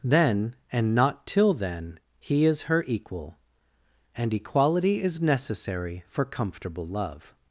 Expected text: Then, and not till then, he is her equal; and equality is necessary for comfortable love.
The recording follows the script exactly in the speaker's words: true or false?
true